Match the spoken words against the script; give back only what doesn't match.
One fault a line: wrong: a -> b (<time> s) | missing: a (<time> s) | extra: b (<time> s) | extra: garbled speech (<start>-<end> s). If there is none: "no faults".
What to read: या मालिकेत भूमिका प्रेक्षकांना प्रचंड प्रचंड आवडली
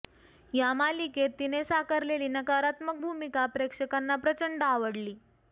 extra: तिने साकारलेली नकारात्मक (1.4 s)
missing: प्रचंड (4.6 s)